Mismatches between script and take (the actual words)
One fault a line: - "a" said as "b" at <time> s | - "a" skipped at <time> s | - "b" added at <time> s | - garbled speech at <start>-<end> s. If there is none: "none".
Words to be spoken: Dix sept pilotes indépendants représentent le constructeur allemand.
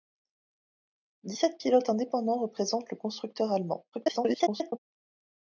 - garbled speech at 3.9-4.8 s